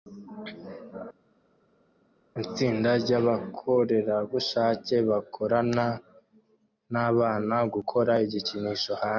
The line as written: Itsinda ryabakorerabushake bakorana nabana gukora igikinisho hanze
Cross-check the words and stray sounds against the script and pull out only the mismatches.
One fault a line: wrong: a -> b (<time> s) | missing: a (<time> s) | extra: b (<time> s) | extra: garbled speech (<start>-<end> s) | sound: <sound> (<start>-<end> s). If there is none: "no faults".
no faults